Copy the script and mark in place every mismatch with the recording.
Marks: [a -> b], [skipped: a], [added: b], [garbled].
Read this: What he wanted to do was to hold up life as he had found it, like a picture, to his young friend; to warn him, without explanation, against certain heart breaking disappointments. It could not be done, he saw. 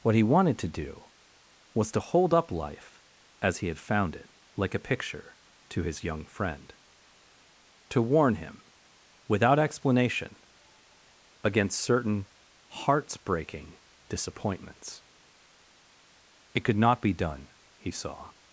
What he wanted to do was to hold up life as he had found it, like a picture, to his young friend; to warn him, without explanation, against certain [heart -> hearts] breaking disappointments. It could not be done, he saw.